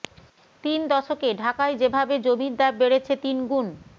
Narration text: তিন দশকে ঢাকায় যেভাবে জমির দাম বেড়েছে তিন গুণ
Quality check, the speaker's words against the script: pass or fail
pass